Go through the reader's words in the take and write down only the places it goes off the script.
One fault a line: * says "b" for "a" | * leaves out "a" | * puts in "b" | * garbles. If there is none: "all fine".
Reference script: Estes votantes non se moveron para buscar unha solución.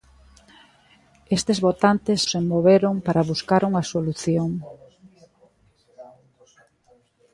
* leaves out "non"